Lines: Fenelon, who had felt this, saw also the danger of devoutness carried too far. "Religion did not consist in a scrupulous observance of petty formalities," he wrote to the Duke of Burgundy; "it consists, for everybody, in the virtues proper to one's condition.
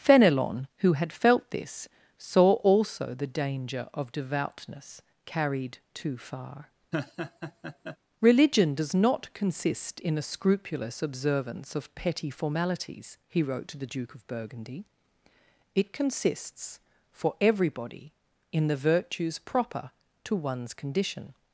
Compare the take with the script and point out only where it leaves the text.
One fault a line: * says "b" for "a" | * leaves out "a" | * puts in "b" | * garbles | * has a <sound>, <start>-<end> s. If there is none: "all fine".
* has a laugh, 6.9-8.0 s
* says "does" for "did"